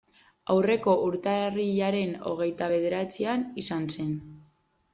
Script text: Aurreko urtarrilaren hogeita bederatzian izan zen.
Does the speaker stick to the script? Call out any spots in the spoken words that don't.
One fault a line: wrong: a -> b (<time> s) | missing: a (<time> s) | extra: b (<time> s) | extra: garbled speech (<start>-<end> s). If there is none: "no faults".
no faults